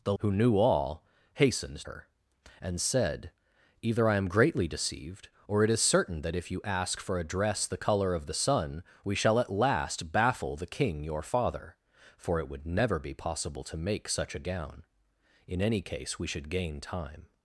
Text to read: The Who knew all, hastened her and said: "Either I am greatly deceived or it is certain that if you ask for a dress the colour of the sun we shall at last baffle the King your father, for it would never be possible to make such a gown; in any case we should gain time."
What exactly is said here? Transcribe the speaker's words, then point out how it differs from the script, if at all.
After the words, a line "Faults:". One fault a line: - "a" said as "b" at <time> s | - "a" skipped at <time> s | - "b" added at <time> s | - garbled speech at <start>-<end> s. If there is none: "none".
The Who knew all, hastened her and said: "Either I am greatly deceived or it is certain that if you ask for a dress the colour of the sun we shall at last baffle the King your father, for it would never be possible to make such a gown; in any case we should gain time."
Faults:
none